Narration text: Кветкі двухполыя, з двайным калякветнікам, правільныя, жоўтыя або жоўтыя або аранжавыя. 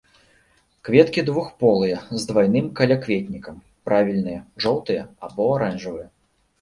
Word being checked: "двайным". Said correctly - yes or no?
yes